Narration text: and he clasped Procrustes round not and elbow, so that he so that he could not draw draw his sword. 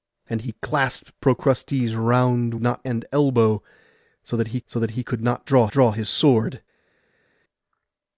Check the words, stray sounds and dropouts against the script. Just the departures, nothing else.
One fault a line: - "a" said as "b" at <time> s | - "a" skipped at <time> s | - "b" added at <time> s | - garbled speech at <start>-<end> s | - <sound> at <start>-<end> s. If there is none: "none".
none